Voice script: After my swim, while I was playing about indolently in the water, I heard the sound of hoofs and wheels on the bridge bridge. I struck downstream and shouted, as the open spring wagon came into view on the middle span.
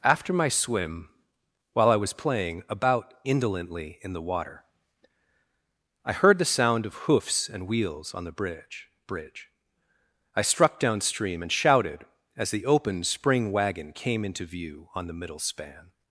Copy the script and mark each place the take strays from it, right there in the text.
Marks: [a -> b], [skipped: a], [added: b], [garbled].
After my swim, while I was playing about indolently in the water, I heard the sound of hoofs and wheels on the bridge bridge. I struck downstream and shouted, as the open spring wagon came into view on the middle span.